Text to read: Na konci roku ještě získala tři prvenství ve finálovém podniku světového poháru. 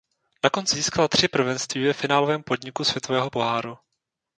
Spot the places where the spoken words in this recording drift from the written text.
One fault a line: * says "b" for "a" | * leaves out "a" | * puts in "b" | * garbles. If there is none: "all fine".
* leaves out "roku ještě"